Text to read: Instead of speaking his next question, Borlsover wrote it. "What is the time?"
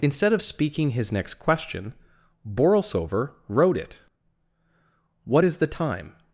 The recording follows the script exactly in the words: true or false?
true